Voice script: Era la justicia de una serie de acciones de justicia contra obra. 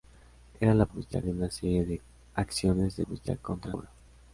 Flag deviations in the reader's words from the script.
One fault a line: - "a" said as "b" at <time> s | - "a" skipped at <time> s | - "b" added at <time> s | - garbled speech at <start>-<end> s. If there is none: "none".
none